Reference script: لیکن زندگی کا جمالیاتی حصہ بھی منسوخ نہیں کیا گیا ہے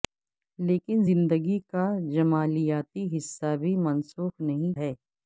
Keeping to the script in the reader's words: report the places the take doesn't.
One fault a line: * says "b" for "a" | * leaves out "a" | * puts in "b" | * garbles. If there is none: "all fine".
* leaves out "کیا گیا"